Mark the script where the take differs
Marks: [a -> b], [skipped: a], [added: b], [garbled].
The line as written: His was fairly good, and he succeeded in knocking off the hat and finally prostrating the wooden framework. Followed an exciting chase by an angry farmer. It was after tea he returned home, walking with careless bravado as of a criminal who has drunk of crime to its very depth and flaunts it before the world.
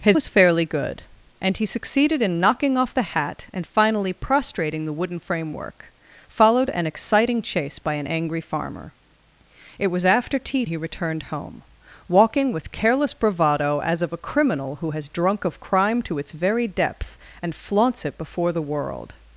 His was fairly good, and he succeeded in knocking off the hat and finally prostrating the wooden framework. Followed an exciting chase by an angry farmer. It was after tea he returned home, walking with careless bravado as of a criminal who has drunk of crime to its very depth and flaunts it before the world.